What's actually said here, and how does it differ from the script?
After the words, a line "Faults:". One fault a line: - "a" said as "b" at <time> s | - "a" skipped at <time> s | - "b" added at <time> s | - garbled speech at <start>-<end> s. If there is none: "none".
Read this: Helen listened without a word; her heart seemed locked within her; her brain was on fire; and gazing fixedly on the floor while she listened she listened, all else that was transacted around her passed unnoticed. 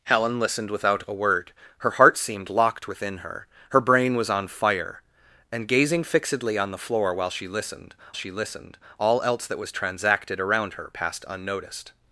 Helen listened without a word; her heart seemed locked within her; her brain was on fire; and gazing fixedly on the floor while she listened she listened, all else that was transacted around her passed unnoticed.
Faults:
none